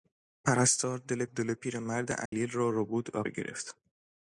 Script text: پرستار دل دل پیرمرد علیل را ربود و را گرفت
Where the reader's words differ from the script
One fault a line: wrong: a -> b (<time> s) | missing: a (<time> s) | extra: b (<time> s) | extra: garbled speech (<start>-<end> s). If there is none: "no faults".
no faults